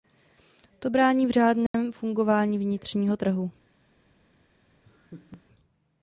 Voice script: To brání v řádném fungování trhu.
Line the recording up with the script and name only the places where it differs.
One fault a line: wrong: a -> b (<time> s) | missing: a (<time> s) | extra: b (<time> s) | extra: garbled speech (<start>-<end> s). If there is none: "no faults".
extra: vnitřního (2.6 s)